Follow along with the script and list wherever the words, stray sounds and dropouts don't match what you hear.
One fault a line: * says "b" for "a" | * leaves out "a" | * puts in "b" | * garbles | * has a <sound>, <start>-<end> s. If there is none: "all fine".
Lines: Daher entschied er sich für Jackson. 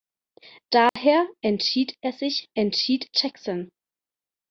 * has a dropout, 0.9-1.0 s
* says "entschied" for "für"